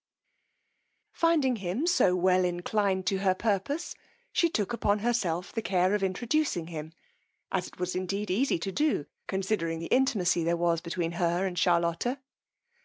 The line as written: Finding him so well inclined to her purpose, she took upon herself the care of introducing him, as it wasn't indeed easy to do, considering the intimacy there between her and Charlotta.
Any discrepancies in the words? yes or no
yes